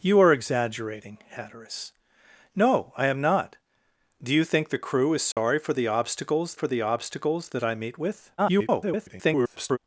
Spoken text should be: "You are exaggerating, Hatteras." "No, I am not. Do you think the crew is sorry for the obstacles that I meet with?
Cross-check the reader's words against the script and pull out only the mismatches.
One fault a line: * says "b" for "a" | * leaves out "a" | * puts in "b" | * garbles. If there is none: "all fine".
* puts in "for the obstacles"
* garbles